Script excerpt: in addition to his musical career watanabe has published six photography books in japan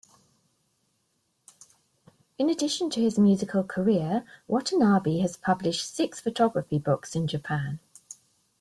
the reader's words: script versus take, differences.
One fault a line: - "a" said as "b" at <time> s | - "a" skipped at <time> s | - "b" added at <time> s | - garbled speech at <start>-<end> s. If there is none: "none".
none